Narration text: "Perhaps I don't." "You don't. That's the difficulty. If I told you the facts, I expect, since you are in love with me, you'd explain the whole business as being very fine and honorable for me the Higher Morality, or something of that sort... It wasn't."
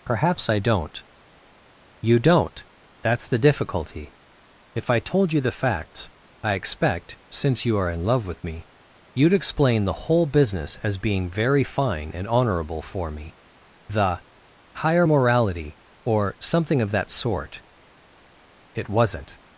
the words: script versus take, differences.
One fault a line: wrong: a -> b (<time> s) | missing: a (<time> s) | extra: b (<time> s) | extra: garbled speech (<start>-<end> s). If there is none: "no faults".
no faults